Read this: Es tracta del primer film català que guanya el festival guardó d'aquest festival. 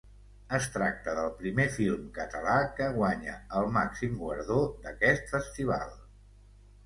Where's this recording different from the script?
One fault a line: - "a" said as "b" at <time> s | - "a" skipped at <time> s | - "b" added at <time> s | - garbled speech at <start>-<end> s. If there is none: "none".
- "festival" said as "màxim" at 3.7 s